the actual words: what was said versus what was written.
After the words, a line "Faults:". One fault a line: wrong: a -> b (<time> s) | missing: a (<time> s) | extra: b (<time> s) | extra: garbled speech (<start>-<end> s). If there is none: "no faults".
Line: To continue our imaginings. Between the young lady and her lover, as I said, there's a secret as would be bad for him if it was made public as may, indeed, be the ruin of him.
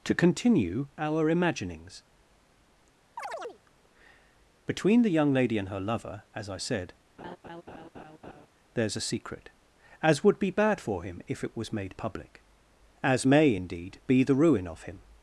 To continue our imaginings. Between the young lady and her lover, as I said, there's a secret as would be bad for him if it was made public as may, indeed, be the ruin of him.
Faults:
no faults